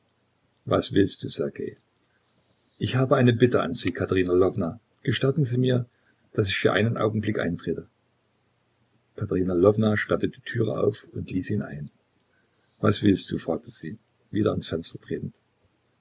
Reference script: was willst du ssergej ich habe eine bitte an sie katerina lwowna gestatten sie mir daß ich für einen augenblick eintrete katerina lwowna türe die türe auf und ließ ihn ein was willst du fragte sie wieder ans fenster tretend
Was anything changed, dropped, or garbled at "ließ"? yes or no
no